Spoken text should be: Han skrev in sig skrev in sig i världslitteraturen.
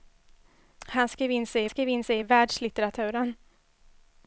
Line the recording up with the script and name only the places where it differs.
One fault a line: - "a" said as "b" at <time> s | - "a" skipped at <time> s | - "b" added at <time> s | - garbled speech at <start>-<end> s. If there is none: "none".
none